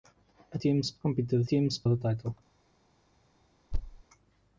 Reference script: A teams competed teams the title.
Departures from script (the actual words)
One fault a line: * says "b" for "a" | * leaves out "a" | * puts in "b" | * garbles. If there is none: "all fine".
all fine